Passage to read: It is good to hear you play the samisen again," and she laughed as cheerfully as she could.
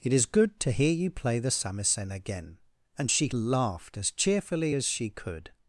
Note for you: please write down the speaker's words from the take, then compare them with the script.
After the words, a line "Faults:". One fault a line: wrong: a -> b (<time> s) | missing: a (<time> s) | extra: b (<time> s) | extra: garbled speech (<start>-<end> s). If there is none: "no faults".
It is good to hear you play the samisen again," and she laughed as cheerfully as she could.
Faults:
no faults